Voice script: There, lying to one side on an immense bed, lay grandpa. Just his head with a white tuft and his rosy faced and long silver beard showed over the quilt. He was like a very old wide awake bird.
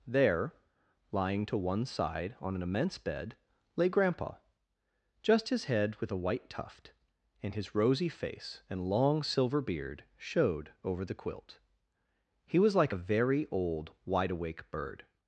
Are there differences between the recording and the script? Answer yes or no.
yes